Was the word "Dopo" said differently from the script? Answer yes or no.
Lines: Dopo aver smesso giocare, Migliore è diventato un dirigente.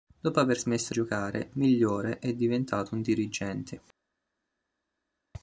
no